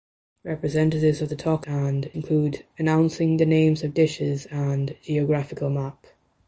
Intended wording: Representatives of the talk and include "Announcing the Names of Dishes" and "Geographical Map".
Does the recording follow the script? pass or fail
pass